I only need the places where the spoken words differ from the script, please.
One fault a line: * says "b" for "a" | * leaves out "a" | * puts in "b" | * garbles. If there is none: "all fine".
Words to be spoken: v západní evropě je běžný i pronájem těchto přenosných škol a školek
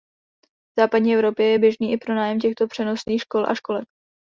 all fine